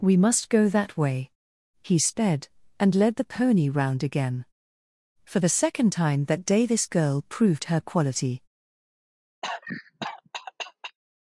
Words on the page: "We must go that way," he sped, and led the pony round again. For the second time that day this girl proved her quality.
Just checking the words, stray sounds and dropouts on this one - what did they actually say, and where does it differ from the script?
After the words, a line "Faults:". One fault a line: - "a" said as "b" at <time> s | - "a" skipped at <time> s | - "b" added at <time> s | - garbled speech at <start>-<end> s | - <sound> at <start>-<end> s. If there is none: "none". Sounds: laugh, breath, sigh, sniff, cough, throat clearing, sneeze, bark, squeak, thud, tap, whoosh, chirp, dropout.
"We must go that way," he sped, and led the pony round again. For the second time that day this girl proved her quality.
Faults:
- cough at 9.4-11.0 s